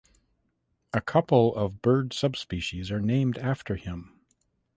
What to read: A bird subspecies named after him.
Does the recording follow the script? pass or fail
fail